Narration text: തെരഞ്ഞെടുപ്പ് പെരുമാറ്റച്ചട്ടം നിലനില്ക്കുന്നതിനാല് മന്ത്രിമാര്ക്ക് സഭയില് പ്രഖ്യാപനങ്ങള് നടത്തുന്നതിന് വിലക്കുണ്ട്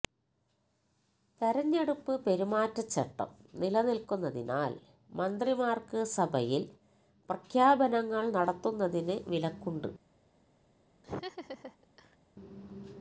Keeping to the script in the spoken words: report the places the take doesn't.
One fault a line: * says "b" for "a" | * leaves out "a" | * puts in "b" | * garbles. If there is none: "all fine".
all fine